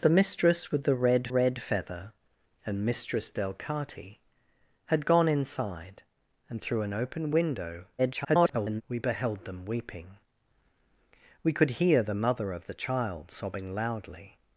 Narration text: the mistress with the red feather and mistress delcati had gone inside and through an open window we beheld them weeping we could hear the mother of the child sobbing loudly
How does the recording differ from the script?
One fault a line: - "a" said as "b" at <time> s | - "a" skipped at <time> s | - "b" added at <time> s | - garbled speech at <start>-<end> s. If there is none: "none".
- "red" added at 1.3 s
- garbled speech at 8.0-8.8 s